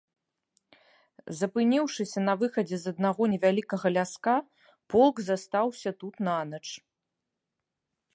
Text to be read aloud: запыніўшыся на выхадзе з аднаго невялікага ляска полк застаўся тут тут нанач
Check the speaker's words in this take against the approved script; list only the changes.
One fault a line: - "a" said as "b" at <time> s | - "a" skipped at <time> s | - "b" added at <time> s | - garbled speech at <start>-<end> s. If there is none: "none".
- "тут" skipped at 6.1 s